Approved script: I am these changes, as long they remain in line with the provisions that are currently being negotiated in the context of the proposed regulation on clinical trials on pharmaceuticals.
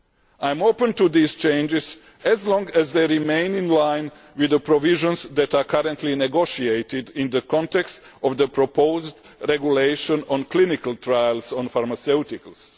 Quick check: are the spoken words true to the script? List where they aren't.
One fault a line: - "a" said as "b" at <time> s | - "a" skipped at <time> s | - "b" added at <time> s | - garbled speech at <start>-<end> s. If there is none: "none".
- "open to" added at 0.6 s
- "as" added at 2.7 s